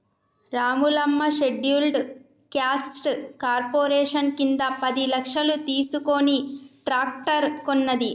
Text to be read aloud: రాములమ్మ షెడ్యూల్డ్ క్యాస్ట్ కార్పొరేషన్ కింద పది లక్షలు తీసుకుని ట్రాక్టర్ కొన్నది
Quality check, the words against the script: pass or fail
pass